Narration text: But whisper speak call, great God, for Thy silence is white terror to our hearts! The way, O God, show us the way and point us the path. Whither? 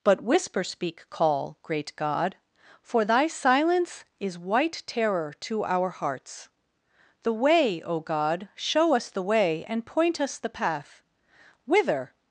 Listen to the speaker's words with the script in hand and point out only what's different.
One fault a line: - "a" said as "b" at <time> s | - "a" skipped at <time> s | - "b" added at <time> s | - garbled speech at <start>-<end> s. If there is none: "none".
none